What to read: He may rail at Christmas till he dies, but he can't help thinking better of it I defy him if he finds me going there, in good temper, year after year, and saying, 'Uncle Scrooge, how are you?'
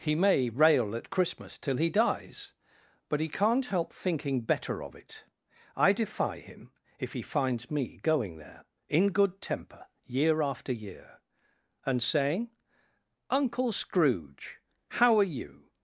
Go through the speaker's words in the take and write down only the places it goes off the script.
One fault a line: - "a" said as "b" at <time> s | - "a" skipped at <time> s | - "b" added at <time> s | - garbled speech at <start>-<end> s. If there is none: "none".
none